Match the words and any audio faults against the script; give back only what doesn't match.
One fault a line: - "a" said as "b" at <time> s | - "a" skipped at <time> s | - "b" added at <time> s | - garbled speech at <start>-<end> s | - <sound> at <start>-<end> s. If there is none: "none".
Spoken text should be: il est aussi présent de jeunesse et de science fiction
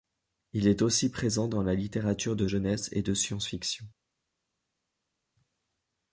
- "dans la littérature" added at 1.5 s